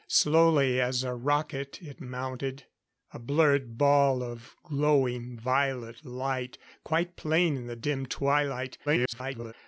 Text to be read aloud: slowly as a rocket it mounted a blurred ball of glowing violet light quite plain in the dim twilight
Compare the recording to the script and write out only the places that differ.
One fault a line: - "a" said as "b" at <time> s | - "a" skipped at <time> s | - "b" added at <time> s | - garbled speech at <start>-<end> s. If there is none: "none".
- garbled speech at 8.9-9.5 s